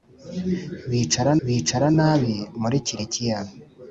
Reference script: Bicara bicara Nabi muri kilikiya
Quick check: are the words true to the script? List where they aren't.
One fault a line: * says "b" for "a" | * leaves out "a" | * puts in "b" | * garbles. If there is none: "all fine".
all fine